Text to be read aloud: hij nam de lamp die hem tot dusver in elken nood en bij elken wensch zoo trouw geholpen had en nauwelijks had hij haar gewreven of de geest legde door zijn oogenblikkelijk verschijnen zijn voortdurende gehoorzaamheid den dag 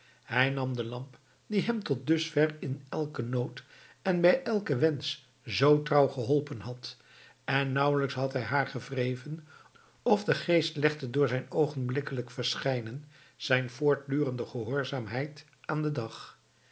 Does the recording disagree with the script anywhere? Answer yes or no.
yes